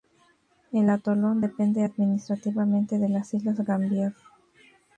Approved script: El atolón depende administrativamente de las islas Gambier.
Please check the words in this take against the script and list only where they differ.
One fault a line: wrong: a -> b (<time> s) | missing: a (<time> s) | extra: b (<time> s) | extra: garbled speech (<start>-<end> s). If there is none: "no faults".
no faults